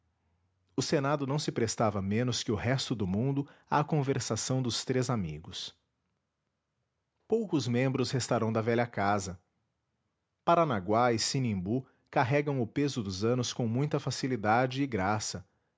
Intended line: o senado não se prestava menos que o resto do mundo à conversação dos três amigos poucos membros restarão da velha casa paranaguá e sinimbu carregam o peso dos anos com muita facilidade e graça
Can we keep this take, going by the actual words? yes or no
yes